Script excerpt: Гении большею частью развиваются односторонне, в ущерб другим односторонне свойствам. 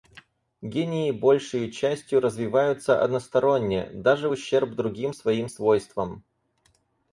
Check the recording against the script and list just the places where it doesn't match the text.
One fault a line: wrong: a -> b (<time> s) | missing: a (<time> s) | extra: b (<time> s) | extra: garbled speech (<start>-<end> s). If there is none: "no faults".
extra: даже (3.9 s)
wrong: односторонне -> своим (5.1 s)